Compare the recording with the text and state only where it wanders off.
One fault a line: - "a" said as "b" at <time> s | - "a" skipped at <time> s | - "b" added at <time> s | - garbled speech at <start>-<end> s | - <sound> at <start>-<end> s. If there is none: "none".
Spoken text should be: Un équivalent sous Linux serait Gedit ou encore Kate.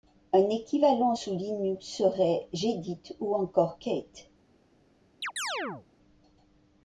- chirp at 5.2-5.9 s